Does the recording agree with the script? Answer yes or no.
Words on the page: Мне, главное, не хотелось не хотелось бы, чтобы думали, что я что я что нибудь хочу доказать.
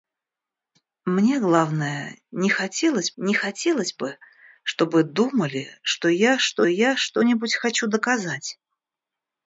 yes